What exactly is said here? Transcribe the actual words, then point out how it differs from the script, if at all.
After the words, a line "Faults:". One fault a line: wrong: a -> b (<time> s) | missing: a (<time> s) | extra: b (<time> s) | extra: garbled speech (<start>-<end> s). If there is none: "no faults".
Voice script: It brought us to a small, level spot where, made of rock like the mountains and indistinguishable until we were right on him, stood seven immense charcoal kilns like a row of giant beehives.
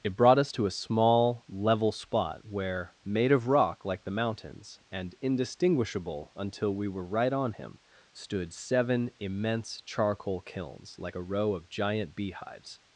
It brought us to a small, level spot where, made of rock like the mountains and indistinguishable until we were right on him, stood seven immense charcoal kilns like a row of giant beehives.
Faults:
no faults